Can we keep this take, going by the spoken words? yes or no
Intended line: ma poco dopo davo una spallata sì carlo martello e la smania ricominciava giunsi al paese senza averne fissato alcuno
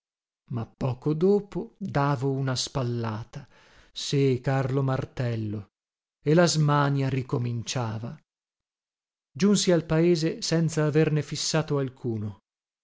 yes